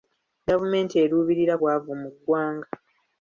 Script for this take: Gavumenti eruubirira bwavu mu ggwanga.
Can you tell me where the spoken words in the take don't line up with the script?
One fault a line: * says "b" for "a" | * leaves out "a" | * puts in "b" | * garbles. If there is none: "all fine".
all fine